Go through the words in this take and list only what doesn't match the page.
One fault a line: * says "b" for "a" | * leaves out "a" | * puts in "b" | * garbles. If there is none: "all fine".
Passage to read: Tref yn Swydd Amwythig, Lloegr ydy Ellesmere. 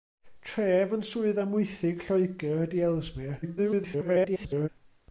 * garbles